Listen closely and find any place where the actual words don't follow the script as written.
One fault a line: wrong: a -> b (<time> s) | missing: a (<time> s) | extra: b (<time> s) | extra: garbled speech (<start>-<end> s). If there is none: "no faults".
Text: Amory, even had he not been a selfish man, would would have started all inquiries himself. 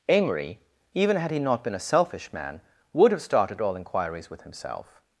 missing: would (3.1 s)
extra: with (4.3 s)